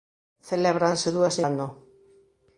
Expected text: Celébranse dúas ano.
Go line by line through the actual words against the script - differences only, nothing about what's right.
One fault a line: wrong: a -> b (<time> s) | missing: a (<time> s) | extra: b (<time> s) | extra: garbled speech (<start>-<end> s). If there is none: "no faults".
no faults